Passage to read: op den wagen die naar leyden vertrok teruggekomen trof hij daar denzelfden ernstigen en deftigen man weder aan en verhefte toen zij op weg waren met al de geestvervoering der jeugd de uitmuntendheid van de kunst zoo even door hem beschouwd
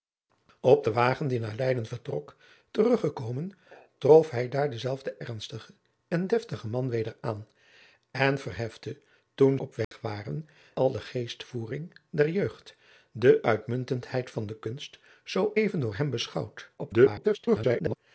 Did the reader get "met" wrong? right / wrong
wrong